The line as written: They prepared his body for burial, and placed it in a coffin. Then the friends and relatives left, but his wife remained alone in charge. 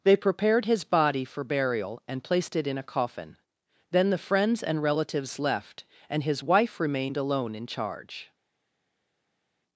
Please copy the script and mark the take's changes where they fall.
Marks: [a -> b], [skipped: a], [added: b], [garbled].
They prepared his body for burial, and placed it in a coffin. Then the friends and relatives left, [but -> and] his wife remained alone in charge.